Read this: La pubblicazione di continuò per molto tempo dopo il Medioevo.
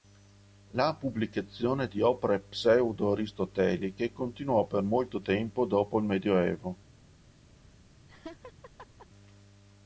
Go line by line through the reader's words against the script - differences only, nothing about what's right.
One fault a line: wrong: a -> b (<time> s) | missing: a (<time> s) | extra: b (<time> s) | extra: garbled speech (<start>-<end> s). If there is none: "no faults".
extra: opere pseudo aristoteliche (2.0 s)